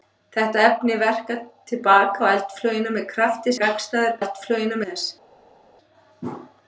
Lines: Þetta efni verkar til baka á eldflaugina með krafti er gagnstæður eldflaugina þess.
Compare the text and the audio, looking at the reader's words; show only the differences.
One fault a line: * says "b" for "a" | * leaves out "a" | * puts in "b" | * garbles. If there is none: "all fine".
all fine